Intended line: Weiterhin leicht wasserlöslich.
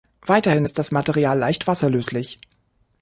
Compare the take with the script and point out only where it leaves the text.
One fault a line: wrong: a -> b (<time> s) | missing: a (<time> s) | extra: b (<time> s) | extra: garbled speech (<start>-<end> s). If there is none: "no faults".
extra: ist das Material (0.6 s)